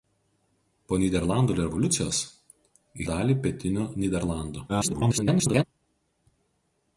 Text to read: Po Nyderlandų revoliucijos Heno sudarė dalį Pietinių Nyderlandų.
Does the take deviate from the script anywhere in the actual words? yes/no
yes